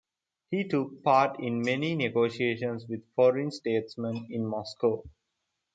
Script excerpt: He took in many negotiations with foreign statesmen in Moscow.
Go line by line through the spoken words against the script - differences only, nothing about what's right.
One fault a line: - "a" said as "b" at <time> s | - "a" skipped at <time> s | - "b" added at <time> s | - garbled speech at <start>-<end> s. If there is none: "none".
- "part" added at 1.0 s